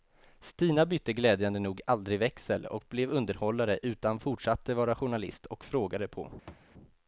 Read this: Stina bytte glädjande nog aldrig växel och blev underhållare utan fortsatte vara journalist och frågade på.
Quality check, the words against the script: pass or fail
pass